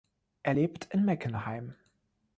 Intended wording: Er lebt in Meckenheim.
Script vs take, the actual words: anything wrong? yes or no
no